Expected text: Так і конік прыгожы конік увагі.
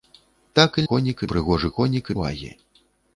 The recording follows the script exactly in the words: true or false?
true